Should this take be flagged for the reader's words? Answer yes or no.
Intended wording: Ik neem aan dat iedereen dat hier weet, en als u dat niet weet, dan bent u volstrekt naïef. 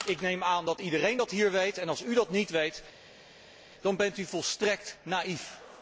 no